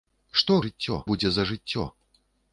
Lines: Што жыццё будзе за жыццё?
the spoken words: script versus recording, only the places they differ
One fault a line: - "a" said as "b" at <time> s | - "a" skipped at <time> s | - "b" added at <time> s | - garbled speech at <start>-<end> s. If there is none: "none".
none